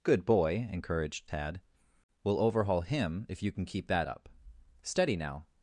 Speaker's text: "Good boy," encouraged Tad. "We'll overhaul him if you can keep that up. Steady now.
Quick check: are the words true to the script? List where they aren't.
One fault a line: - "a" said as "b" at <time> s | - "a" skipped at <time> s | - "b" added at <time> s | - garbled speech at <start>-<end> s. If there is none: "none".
none